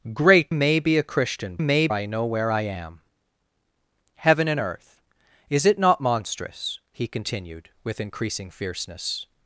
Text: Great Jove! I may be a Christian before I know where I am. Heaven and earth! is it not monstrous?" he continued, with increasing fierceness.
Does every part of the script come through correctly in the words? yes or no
no